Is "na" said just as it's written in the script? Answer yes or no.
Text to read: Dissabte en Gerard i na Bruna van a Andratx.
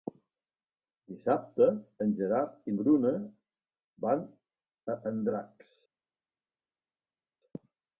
no